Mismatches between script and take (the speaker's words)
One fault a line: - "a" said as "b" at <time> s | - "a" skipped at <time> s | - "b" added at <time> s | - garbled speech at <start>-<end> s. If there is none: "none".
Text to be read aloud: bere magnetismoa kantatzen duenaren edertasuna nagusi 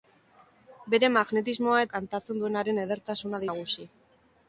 none